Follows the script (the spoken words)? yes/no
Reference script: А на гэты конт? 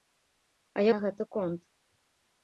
yes